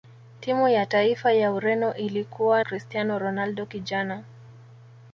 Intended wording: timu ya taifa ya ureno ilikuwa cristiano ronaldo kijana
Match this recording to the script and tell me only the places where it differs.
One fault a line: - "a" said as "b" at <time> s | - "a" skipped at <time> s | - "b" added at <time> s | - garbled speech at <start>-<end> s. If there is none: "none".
none